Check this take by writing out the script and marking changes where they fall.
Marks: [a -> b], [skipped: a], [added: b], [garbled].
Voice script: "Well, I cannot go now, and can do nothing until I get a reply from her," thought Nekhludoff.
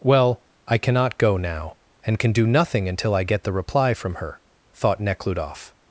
"Well, I cannot go now, and can do nothing until I get [a -> the] reply from her," thought Nekhludoff.